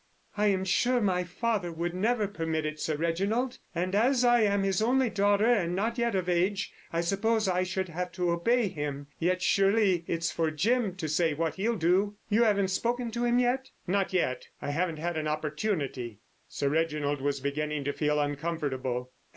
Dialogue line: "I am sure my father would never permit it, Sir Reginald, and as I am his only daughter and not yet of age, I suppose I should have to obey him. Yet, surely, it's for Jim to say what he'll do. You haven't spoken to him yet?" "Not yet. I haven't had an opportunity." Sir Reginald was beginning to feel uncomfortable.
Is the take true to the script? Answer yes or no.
yes